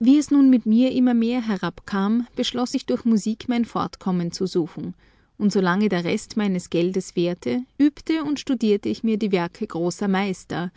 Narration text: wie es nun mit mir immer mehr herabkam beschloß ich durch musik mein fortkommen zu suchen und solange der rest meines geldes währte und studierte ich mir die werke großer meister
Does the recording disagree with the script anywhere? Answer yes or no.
yes